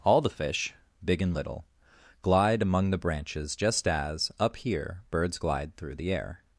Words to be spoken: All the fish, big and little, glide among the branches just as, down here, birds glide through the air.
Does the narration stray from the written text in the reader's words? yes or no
yes